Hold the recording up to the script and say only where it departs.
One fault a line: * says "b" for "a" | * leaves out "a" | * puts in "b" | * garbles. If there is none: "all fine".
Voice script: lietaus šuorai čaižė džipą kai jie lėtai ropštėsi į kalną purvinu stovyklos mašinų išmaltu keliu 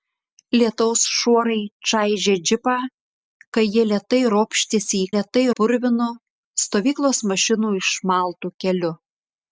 * says "lėtai" for "kalną"